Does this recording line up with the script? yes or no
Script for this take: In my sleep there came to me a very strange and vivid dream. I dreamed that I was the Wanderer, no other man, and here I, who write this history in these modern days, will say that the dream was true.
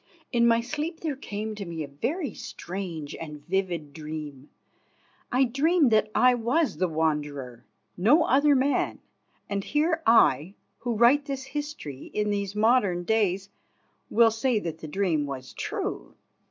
yes